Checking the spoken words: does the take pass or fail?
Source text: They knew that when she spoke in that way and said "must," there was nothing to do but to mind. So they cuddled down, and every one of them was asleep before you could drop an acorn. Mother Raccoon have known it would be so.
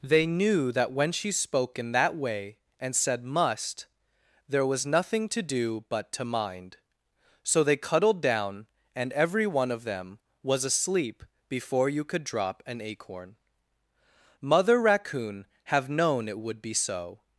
pass